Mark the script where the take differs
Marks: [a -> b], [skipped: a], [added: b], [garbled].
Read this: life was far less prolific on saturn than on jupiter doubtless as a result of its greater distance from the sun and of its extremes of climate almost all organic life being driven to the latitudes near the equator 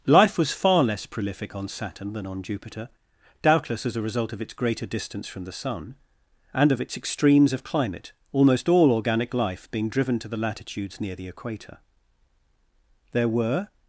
life was far less prolific on saturn than on jupiter doubtless as a result of its greater distance from the sun and of its extremes of climate almost all organic life being driven to the latitudes near the equator [added: there were]